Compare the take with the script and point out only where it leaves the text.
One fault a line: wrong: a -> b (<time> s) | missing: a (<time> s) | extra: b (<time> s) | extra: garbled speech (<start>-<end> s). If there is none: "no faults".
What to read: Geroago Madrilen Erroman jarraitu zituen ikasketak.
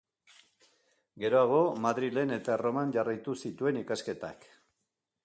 extra: eta (2.4 s)